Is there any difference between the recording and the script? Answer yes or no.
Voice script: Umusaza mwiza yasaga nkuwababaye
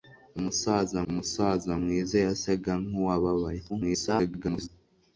yes